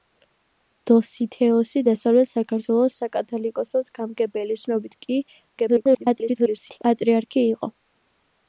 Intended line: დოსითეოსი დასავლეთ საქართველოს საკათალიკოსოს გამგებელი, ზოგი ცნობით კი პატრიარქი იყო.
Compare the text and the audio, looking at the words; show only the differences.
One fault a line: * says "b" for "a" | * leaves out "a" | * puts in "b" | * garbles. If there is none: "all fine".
* leaves out "ზოგი"
* garbles